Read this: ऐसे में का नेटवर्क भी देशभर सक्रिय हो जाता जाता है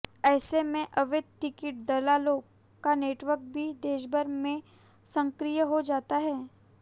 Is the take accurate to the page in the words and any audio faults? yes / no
no